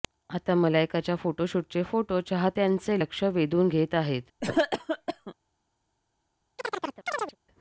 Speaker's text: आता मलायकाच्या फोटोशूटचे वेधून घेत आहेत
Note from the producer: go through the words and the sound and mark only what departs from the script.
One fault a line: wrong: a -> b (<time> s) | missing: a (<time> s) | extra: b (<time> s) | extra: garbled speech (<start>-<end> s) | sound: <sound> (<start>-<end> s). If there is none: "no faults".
extra: फोटो चाहत्यांचे लक्ष (1.8 s)
sound: cough (4.4-5.3 s)
sound: chirp (6.6-7.4 s)